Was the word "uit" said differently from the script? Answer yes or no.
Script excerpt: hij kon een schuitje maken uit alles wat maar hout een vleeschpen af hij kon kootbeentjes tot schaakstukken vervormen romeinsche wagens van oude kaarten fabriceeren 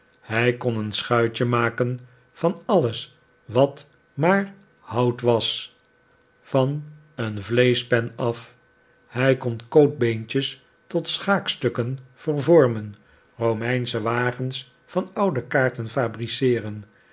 yes